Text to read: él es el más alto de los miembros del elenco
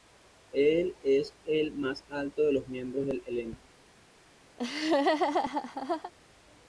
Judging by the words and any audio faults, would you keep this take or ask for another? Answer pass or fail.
fail